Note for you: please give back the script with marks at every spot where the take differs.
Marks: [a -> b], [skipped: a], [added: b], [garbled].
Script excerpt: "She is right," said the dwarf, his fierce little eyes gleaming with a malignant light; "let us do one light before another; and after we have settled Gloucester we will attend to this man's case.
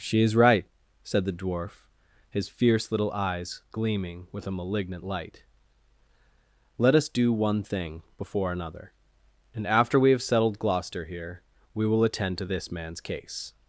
"She is right," said the dwarf, his fierce little eyes gleaming with a malignant light; "let us do one [light -> thing] before another; and after we have settled Gloucester [added: here] we will attend to this man's case.